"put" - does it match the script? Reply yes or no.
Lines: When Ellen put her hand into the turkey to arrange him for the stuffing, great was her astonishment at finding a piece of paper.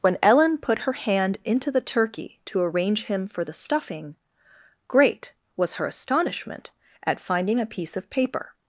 yes